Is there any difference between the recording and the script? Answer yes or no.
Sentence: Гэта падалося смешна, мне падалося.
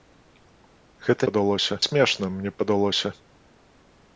no